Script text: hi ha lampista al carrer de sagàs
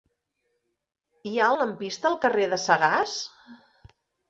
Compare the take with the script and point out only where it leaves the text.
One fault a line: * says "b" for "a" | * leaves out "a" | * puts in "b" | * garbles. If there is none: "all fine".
all fine